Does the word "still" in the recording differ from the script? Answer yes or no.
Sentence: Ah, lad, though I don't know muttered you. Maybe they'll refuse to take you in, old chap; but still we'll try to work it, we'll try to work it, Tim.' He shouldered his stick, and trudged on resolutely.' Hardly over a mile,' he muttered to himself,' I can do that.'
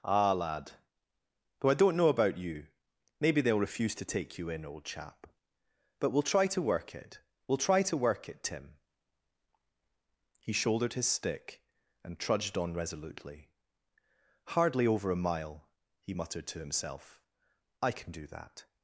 yes